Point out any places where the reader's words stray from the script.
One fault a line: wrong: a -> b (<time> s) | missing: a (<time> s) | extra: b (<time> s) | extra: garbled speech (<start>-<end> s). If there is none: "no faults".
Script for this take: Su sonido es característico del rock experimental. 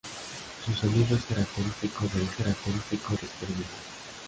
wrong: rock -> característico (2.3 s)